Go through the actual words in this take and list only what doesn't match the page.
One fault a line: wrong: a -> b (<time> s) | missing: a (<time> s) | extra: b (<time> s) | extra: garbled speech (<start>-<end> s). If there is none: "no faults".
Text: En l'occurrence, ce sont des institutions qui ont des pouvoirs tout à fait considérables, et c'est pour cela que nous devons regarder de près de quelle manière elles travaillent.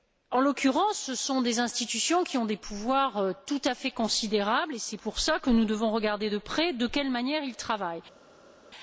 no faults